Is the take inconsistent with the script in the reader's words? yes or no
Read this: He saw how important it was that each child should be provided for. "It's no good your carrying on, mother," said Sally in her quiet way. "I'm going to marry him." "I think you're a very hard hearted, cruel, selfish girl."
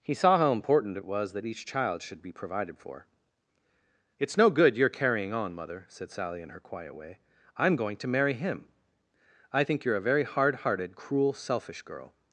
no